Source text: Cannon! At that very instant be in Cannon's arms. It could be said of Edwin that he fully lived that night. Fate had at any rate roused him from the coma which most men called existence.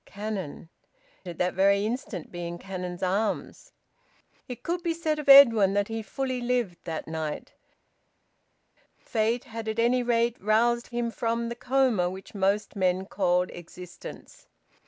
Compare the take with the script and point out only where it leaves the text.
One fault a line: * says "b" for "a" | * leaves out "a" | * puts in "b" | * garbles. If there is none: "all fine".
all fine